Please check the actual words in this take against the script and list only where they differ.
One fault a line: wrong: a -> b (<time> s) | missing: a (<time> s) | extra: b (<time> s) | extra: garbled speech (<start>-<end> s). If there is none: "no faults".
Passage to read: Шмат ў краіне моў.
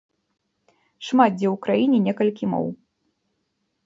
extra: дзе (1.4 s)
extra: некалькі (2.1 s)